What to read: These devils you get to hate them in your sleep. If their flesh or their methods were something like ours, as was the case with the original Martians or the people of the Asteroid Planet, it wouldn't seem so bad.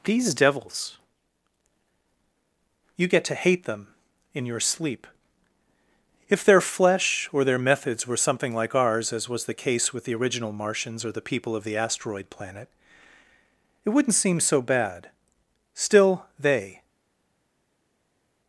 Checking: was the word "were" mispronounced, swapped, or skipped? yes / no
no